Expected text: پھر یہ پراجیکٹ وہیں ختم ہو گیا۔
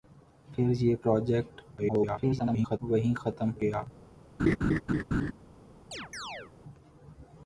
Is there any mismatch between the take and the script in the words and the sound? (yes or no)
yes